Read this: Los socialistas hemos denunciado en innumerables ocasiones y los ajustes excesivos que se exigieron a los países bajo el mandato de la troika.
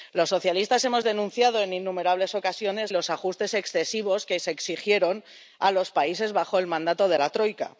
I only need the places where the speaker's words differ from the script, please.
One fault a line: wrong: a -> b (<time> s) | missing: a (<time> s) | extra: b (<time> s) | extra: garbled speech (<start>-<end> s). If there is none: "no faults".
no faults